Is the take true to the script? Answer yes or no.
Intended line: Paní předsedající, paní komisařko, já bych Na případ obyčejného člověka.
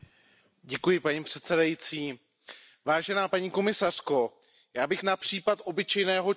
yes